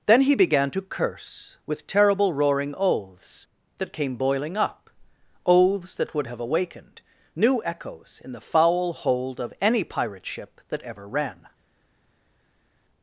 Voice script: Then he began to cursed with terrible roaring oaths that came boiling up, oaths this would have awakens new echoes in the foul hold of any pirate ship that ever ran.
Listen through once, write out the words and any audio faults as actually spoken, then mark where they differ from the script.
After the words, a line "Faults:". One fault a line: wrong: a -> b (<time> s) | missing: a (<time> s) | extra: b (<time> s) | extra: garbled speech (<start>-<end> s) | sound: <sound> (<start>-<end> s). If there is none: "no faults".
Then he began to curse with terrible roaring oaths that came boiling up, oaths that would have awakened new echoes in the foul hold of any pirate ship that ever ran.
Faults:
wrong: cursed -> curse (0.8 s)
wrong: this -> that (5.9 s)
wrong: awakens -> awakened (6.4 s)